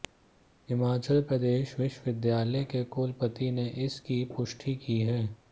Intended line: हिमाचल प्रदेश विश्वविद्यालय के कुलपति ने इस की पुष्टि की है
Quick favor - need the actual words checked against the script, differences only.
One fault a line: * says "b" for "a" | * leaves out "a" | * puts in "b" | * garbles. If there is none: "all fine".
all fine